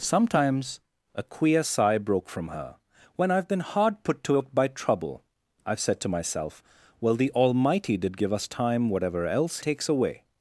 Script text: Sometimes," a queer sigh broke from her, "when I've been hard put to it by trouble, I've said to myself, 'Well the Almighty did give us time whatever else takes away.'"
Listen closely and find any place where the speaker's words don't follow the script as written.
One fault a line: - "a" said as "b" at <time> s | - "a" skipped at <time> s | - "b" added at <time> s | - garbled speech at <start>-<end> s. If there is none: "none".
none